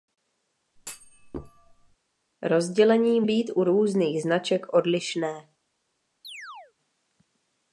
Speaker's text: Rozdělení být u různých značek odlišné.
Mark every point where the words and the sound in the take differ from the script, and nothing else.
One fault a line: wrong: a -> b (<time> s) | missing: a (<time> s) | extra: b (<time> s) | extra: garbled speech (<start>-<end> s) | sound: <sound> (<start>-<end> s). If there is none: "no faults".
sound: thud (0.8-2.0 s)
sound: chirp (6.2-6.7 s)